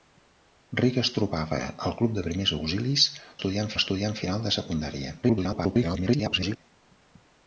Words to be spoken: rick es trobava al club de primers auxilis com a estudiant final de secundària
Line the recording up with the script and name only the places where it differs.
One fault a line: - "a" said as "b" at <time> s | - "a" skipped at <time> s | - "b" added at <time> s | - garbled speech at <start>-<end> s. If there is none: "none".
- "com" said as "estudiant" at 3.4 s
- garbled speech at 5.2-6.6 s